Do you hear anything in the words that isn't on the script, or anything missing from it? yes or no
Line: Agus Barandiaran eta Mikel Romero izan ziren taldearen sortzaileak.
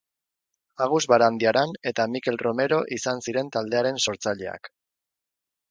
no